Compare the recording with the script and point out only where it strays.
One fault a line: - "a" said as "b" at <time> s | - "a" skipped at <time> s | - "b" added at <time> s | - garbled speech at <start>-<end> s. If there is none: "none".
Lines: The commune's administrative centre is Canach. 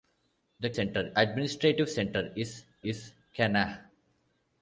- "commune's" said as "centre" at 0.7 s
- "is" added at 2.8 s